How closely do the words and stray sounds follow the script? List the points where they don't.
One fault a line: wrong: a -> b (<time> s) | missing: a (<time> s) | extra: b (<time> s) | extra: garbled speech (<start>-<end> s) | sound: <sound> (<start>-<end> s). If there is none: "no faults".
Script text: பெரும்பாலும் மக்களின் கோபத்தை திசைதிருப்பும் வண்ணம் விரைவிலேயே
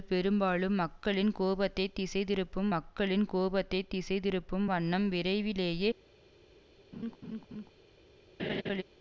extra: மக்களின் கோபத்தை திசைதிருப்பும் (2.7 s)
sound: laugh (6.9-7.7 s)
sound: laugh (8.4-8.8 s)